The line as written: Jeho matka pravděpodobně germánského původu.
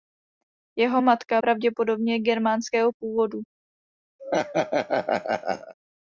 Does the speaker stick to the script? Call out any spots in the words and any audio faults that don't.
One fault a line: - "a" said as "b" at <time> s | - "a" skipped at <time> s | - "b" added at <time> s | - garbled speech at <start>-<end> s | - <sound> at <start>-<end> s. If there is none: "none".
- laugh at 4.2-5.7 s